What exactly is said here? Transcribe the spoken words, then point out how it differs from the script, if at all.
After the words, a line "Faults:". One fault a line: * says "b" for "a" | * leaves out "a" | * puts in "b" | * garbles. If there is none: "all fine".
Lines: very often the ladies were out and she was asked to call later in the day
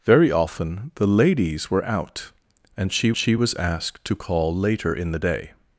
very often the ladies were out and she she was asked to call later in the day
Faults:
* puts in "she"